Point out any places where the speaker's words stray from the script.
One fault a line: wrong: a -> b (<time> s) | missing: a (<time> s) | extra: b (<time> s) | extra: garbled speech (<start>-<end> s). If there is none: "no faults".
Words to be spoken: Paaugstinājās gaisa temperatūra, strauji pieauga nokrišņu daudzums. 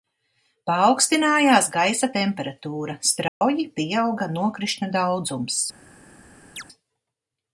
no faults